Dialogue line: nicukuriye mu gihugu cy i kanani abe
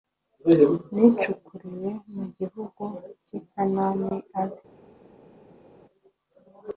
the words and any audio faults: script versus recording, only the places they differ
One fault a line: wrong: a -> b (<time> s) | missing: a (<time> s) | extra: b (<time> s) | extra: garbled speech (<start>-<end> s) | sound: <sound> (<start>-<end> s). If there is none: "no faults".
no faults